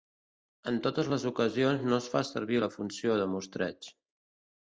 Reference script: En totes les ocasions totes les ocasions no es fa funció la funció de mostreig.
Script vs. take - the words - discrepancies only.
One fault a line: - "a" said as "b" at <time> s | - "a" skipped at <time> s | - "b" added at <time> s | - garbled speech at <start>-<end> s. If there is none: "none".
- "totes les ocasions" skipped at 1.8 s
- "funció" said as "servir" at 2.3 s